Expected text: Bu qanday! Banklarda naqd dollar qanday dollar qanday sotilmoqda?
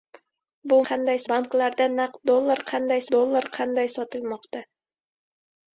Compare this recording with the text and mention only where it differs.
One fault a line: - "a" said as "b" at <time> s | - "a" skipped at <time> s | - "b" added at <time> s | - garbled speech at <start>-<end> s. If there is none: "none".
none